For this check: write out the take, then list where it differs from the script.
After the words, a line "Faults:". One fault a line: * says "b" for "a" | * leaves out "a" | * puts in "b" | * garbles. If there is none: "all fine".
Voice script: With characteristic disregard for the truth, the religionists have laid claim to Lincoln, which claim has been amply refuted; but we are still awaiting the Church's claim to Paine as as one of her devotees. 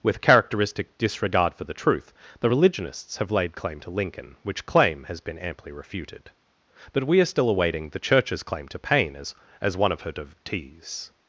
With characteristic disregard for the truth, the religionists have laid claim to Lincoln, which claim has been amply refuted; but we are still awaiting the Church's claim to Paine as as one of her devotees.
Faults:
all fine